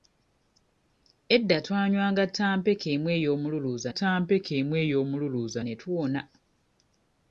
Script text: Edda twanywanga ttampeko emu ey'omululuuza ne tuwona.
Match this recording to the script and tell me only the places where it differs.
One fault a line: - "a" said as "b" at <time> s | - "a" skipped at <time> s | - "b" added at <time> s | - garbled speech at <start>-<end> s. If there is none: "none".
- "ttampeko emu ey'omululuuza" added at 3.9 s